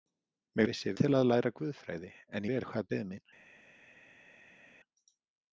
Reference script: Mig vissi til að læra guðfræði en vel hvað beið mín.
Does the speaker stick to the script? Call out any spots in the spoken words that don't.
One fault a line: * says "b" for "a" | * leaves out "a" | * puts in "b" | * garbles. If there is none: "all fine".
all fine